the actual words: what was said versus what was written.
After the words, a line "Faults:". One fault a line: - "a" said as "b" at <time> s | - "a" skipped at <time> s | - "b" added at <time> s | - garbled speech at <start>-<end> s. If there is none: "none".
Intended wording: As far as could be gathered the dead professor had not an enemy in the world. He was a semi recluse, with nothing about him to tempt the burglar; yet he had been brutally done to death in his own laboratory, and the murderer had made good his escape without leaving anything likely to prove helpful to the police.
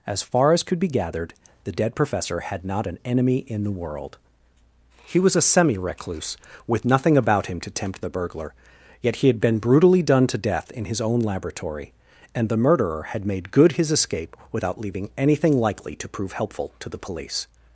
As far as could be gathered the dead professor had not an enemy in the world. He was a semi recluse, with nothing about him to tempt the burglar; yet he had been brutally done to death in his own laboratory, and the murderer had made good his escape without leaving anything likely to prove helpful to the police.
Faults:
none